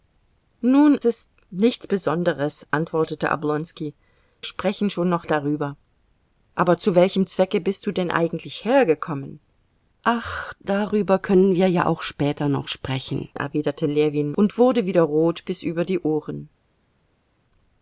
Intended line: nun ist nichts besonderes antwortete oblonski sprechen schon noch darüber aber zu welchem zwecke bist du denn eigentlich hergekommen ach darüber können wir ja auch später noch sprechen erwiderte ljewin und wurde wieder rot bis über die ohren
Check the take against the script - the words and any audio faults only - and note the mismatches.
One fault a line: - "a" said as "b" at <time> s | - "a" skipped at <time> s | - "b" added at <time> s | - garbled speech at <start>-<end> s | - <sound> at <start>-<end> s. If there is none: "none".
none